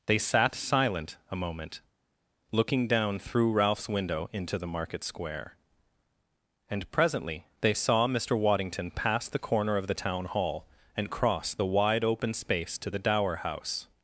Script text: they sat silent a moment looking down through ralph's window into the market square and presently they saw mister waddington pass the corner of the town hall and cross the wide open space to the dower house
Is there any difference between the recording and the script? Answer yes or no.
no